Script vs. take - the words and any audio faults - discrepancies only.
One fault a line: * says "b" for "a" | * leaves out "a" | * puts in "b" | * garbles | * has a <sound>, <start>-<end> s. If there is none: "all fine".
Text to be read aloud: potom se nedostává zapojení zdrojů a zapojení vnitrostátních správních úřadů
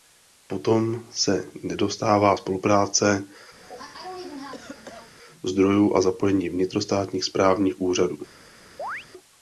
* says "spolupráce" for "zapojení"
* has a cough, 3.6-5.1 s
* has a chirp, 8.8-9.1 s